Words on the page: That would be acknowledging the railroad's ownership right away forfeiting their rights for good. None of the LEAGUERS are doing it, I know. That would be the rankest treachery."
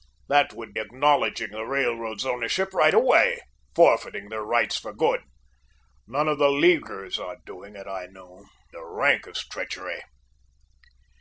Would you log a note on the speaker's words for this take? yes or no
yes